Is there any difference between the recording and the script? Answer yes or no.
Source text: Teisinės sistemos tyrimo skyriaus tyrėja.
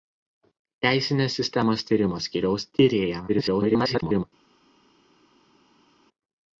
yes